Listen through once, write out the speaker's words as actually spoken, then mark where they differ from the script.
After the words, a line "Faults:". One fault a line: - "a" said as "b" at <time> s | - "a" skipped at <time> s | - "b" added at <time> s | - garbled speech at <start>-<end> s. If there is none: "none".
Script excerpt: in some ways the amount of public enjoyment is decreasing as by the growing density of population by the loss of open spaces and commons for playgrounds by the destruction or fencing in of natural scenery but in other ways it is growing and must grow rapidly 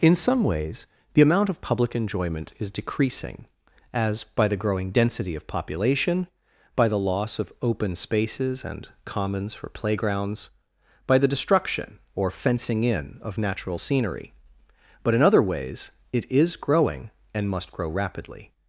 in some ways the amount of public enjoyment is decreasing as by the growing density of population by the loss of open spaces and commons for playgrounds by the destruction or fencing in of natural scenery but in other ways it is growing and must grow rapidly
Faults:
none